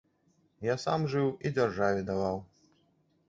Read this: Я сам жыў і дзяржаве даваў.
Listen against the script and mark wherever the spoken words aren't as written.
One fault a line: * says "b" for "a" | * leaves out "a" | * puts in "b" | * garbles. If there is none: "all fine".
all fine